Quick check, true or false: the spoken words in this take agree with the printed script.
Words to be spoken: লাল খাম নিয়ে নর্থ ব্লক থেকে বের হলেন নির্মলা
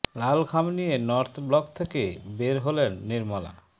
true